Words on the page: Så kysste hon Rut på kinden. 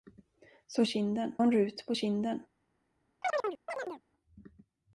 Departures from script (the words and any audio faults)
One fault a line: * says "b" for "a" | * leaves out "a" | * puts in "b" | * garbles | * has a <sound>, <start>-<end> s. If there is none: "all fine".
* says "kinden" for "kysste"
* has a chirp, 3.2-4.0 s